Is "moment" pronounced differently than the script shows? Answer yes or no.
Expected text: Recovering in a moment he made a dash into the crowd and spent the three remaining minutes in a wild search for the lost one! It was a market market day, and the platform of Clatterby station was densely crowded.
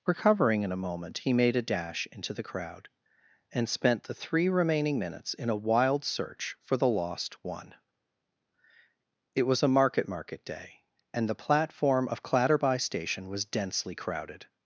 no